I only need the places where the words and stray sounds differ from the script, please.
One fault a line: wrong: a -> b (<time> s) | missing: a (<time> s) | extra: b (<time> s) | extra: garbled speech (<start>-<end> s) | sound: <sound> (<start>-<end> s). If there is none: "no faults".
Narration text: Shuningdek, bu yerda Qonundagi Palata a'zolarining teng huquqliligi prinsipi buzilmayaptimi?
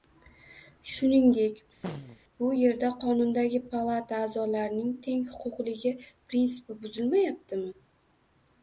sound: throat clearing (1.8-2.2 s)